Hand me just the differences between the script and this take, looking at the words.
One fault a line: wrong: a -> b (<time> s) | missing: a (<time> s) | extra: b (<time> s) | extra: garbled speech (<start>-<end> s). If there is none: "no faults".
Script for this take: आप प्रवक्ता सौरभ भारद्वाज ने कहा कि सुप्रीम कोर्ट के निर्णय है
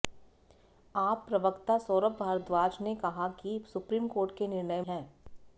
no faults